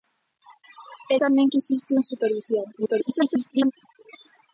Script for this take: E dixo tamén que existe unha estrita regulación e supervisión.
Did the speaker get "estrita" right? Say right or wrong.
wrong